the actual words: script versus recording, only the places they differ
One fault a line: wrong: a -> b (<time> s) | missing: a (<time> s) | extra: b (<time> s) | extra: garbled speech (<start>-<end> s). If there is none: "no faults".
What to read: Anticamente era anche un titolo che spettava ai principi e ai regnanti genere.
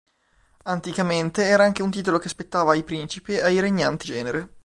no faults